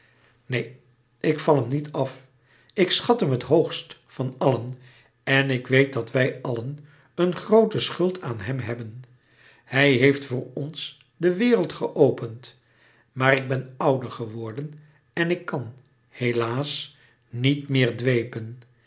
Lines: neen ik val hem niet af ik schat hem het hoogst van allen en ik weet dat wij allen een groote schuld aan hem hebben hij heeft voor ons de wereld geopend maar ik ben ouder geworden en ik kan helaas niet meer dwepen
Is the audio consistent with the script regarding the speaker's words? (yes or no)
yes